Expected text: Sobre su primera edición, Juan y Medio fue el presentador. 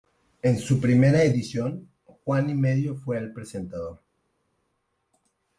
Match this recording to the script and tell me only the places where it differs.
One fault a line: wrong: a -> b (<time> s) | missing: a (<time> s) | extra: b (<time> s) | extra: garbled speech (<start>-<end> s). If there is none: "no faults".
wrong: Sobre -> En (0.4 s)